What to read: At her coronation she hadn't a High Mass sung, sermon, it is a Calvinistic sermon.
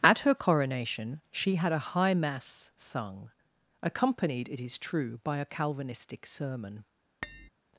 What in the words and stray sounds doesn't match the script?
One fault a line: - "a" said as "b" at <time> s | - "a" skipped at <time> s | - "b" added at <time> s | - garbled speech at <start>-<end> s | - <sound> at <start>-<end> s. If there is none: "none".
- "hadn't" said as "had" at 1.5 s
- "sermon" said as "accompanied" at 3.8 s
- "true by" added at 4.8 s
- tap at 7.2-7.5 s